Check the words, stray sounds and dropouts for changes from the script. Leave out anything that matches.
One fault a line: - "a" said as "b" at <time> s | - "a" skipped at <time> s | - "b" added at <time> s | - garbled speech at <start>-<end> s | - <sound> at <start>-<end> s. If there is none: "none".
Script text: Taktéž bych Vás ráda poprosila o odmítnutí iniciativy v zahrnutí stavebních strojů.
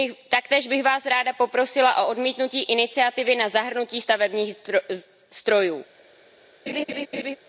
- "v" said as "na" at 3.4 s
- laugh at 6.7-7.4 s